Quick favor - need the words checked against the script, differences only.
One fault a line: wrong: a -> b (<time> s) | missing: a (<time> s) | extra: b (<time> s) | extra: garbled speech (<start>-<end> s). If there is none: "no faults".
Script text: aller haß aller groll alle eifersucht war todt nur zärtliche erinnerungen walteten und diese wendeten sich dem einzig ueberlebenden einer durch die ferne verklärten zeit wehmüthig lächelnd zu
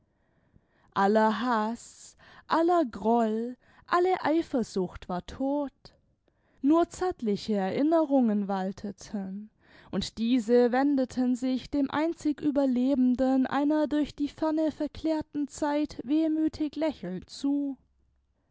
no faults